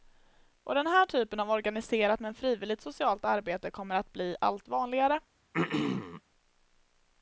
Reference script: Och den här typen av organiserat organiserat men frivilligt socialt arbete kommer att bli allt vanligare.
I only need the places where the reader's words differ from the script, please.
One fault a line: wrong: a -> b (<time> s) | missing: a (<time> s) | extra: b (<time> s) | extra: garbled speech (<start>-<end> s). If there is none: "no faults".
missing: organiserat (2.2 s)